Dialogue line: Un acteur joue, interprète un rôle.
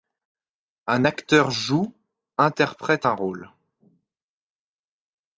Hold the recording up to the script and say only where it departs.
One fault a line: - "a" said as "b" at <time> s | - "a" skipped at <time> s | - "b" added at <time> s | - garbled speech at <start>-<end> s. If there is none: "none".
none